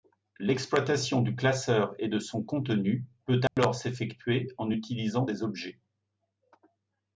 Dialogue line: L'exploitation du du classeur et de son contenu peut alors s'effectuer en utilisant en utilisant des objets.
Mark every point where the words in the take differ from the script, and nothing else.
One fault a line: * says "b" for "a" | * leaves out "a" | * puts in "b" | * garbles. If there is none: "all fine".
* leaves out "du"
* leaves out "en utilisant"